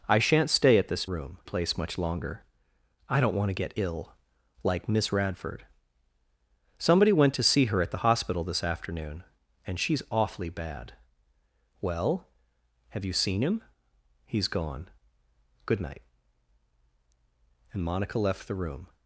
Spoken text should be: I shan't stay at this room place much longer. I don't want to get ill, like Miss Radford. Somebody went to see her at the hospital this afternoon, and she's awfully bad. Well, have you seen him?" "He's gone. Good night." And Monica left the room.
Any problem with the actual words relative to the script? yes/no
no